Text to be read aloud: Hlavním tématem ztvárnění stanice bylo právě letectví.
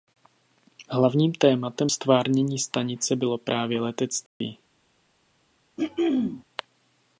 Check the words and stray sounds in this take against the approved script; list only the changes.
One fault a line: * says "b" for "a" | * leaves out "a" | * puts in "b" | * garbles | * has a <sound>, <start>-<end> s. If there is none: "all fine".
* has a dropout, 4.3-4.4 s
* has a throat clearing, 5.8-6.4 s